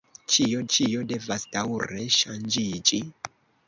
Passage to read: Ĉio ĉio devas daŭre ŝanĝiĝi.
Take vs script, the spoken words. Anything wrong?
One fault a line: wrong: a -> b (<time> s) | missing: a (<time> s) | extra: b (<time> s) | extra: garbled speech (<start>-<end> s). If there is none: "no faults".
no faults